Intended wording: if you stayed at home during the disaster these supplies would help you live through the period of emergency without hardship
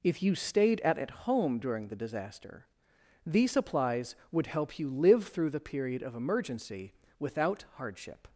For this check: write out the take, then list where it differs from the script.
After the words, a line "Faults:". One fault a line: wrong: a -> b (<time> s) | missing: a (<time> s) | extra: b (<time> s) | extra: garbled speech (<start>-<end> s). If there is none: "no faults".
if you stayed at at home during the disaster these supplies would help you live through the period of emergency without hardship
Faults:
extra: at (1.0 s)